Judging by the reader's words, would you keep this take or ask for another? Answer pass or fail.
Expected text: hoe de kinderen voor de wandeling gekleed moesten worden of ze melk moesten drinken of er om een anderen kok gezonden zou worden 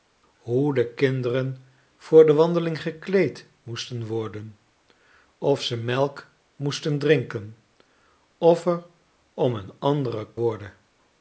fail